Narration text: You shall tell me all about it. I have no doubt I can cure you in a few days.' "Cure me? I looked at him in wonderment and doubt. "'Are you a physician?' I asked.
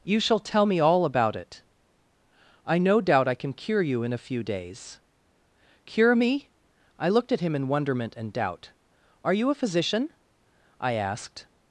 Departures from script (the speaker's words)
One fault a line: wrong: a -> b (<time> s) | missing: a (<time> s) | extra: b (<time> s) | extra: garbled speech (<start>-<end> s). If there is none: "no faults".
missing: have (2.8 s)